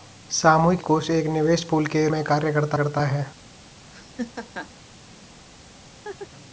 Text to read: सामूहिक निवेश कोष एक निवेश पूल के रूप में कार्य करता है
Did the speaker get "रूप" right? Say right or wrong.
wrong